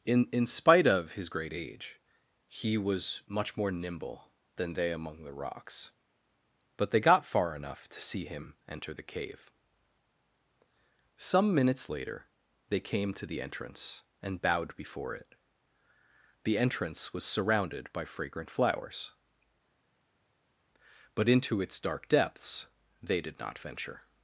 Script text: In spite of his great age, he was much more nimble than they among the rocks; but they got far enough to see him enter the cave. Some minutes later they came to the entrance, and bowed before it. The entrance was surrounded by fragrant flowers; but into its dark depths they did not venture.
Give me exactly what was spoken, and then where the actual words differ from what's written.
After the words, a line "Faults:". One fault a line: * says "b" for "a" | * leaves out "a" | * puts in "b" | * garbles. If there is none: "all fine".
In in spite of his great age, he was much more nimble than they among the rocks; but they got far enough to see him enter the cave. Some minutes later they came to the entrance, and bowed before it. The entrance was surrounded by fragrant flowers; but into its dark depths they did not venture.
Faults:
* puts in "in"